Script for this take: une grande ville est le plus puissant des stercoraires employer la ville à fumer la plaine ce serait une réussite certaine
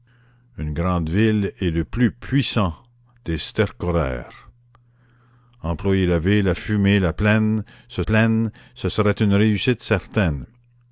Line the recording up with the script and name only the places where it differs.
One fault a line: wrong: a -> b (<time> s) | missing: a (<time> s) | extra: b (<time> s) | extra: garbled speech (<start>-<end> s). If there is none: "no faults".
extra: plaine ce (8.0 s)